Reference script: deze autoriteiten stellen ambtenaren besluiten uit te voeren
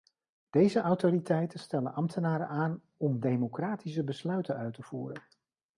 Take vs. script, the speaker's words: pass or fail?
fail